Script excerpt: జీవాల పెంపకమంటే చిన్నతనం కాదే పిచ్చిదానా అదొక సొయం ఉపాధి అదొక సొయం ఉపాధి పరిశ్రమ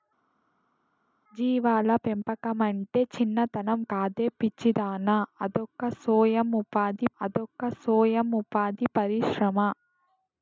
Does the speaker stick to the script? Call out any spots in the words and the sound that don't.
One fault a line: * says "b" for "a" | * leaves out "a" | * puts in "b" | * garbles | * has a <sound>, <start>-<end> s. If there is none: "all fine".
all fine